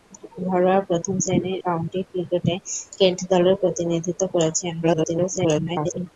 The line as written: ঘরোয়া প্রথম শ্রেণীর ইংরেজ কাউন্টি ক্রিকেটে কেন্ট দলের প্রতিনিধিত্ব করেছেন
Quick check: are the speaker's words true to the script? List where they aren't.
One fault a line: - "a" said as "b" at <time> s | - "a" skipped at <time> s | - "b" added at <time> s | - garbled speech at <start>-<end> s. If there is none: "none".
- "ইংরেজ" skipped at 1.6 s
- garbled speech at 4.8-6.1 s